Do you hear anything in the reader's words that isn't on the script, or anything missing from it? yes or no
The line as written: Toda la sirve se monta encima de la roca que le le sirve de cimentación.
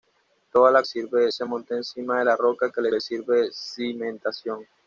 no